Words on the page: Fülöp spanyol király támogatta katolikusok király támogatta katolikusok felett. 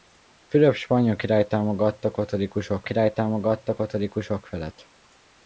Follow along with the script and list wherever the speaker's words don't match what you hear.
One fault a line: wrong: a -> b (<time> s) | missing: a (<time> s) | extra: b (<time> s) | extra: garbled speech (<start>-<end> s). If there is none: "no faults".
no faults